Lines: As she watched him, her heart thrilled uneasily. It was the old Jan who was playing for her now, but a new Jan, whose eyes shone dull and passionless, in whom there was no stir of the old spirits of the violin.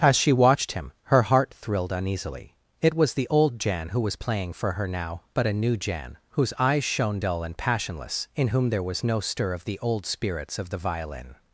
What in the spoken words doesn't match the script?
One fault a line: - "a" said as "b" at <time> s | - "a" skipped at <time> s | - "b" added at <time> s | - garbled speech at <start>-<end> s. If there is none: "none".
none